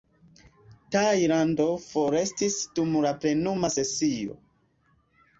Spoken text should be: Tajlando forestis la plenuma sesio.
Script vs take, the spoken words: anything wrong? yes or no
yes